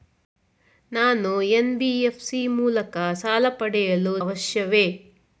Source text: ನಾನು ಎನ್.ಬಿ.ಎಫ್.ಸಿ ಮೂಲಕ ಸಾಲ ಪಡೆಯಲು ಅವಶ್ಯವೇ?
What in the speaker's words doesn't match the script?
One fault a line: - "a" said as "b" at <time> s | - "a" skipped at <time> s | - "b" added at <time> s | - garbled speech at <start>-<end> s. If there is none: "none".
none